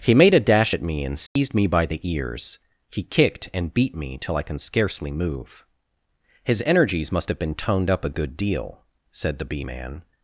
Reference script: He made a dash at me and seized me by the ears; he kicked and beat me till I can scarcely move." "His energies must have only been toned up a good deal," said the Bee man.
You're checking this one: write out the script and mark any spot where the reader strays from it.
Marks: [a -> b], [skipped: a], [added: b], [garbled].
He made a dash at me and seized me by the ears; he kicked and beat me till I can scarcely move." "His energies must have [skipped: only] been toned up a good deal," said the Bee man.